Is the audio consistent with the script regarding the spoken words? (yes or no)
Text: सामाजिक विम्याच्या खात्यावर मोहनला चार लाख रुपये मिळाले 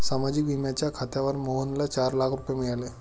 yes